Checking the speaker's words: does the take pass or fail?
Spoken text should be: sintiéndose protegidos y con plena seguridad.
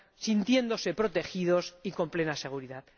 pass